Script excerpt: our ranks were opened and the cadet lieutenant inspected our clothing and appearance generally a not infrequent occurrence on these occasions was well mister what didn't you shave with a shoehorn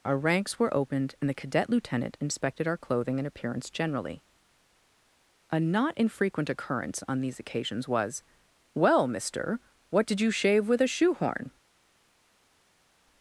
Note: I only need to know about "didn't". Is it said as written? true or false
false